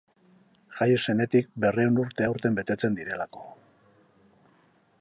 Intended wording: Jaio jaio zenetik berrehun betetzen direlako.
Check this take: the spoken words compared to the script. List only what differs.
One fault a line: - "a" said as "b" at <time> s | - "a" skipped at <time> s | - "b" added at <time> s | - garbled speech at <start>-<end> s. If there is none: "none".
- "jaio" skipped at 0.9 s
- "urte aurten" added at 2.0 s